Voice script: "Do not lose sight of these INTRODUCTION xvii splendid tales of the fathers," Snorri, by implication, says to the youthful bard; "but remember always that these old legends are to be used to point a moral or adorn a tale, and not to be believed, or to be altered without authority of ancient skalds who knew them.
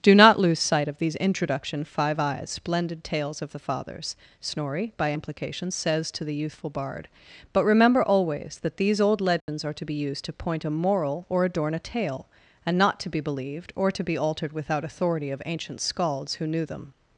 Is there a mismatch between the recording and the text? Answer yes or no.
yes